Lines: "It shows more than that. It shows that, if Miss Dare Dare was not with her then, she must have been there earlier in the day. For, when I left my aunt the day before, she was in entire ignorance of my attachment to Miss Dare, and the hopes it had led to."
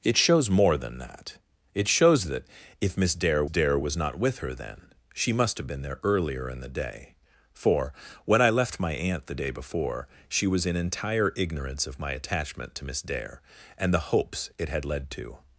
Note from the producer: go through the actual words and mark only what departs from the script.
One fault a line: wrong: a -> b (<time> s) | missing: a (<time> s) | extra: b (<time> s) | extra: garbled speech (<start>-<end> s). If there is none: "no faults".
no faults